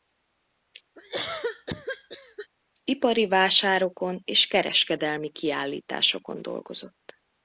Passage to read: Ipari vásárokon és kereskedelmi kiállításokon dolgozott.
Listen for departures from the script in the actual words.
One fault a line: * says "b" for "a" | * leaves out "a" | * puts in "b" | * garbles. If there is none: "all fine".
all fine